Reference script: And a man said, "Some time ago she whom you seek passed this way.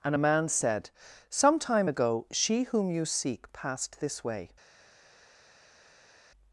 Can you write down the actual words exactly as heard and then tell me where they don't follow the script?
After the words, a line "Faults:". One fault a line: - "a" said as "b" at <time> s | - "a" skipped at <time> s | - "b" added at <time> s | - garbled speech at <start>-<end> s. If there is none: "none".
And a man said, "Some time ago she whom you seek passed this way.
Faults:
none